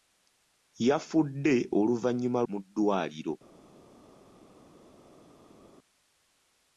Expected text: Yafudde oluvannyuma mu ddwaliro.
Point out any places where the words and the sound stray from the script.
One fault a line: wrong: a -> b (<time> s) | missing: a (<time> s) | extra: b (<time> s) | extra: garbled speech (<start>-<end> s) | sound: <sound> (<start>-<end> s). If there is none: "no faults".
no faults